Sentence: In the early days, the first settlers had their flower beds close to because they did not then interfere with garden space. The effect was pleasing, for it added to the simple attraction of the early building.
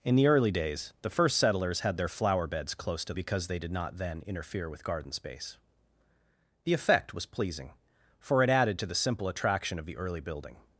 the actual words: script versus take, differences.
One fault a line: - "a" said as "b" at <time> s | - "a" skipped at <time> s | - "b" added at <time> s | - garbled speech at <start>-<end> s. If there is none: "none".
none